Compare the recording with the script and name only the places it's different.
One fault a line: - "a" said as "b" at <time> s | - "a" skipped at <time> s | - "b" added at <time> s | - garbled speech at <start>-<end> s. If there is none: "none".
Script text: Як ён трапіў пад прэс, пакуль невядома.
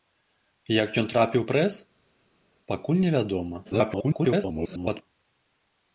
- "пад" skipped at 1.4 s
- garbled speech at 3.6-5.0 s